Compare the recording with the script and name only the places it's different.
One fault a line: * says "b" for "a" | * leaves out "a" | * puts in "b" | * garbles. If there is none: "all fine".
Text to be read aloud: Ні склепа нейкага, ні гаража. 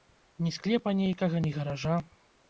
all fine